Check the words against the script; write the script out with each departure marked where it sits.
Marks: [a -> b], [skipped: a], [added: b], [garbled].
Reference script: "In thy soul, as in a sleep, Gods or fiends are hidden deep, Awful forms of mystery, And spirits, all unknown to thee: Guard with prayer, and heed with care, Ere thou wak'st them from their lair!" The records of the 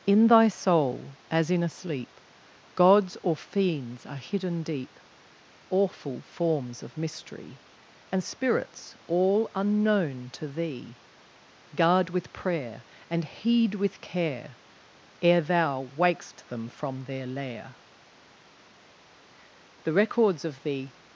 "In thy soul, as in a sleep, Gods or fiends are hidden deep, Awful forms of mystery, And spirits, all unknown to thee: Guard with prayer, and heed with care, Ere thou wak'st them from their lair!" The records of the